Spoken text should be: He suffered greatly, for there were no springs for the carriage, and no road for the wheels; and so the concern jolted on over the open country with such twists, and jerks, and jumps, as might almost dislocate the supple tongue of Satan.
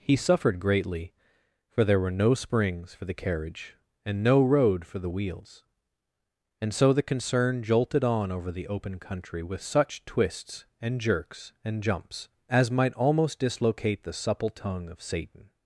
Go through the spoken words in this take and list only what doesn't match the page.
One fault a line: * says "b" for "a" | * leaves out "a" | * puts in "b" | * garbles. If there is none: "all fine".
all fine